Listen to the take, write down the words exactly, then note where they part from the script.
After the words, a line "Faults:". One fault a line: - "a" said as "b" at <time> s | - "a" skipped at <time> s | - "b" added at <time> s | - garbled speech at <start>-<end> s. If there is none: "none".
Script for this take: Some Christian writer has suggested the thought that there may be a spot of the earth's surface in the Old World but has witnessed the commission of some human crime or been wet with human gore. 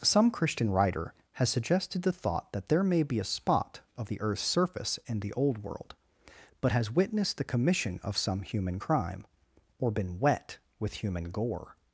Some Christian writer has suggested the thought that there may be a spot of the earth's surface in the Old World but has witnessed the commission of some human crime or been wet with human gore.
Faults:
none